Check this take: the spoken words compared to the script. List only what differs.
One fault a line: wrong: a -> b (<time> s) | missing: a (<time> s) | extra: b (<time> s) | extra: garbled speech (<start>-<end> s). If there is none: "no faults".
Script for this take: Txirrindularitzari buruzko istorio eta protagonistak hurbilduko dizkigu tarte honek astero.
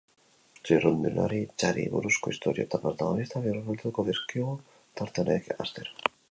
no faults